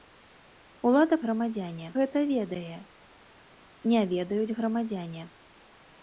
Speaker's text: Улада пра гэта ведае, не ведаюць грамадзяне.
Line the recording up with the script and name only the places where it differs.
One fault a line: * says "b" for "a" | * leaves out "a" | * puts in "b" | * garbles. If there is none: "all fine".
* says "грамадзяне" for "пра"